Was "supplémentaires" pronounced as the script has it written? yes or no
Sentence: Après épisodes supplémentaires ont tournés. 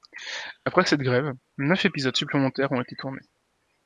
yes